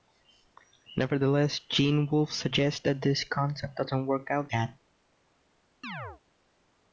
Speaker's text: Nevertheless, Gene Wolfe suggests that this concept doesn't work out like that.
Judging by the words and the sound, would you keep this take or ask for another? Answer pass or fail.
fail